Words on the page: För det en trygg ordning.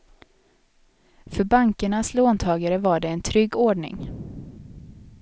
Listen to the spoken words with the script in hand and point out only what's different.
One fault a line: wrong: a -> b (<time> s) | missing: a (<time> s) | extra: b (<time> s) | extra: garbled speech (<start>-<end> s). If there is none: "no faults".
extra: bankernas låntagare var (1.4 s)